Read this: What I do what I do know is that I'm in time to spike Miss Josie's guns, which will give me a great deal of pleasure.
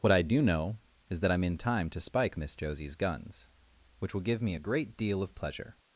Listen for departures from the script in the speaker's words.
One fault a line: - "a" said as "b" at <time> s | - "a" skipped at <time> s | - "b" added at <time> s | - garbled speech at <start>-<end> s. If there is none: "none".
- "what I do" skipped at 0.4 s